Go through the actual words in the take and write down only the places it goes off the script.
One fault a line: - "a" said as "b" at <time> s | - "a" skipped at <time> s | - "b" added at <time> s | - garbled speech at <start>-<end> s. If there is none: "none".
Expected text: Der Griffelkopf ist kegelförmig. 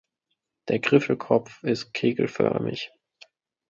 none